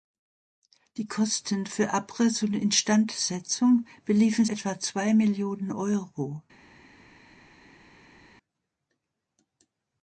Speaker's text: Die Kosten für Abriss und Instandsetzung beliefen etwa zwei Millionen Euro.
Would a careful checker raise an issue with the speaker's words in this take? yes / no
no